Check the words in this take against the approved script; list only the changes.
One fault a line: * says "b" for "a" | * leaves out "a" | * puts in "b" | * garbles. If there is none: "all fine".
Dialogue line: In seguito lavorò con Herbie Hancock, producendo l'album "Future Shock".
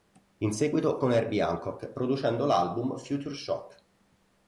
* leaves out "lavorò"